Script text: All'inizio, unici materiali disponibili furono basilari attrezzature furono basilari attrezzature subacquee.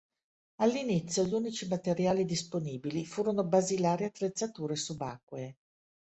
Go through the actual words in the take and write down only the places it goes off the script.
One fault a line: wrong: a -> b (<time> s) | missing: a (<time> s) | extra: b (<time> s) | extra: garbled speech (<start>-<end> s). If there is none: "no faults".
extra: gli (1.2 s)
missing: furono basilari attrezzature (4.8 s)